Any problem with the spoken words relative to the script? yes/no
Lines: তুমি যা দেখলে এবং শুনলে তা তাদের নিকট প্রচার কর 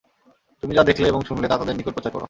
no